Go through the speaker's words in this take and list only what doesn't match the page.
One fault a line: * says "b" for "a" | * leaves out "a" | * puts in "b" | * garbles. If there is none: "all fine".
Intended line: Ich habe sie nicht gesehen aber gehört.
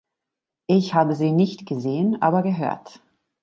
all fine